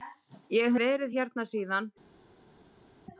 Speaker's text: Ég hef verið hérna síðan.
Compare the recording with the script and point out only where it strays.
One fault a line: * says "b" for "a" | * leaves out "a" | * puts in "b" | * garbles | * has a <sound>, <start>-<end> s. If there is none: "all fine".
* leaves out "hef"